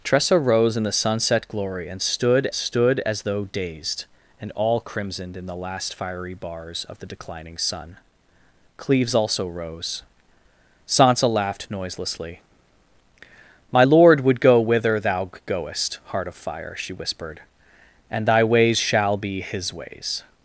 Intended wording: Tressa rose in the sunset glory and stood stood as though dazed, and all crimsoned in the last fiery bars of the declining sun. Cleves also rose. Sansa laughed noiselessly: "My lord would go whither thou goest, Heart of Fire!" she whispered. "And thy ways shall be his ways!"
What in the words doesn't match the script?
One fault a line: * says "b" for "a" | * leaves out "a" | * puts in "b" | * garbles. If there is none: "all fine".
all fine